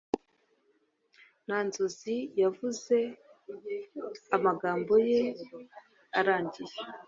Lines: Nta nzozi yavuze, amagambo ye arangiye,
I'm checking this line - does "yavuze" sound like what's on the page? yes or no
yes